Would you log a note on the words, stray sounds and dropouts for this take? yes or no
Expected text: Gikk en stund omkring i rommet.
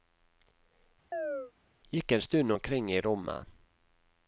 yes